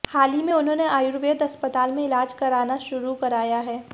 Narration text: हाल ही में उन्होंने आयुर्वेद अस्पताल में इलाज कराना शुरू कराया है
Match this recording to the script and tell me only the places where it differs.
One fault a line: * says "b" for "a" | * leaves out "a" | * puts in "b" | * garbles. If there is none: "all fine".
all fine